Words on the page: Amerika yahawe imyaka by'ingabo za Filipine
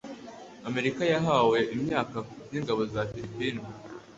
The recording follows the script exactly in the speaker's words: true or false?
true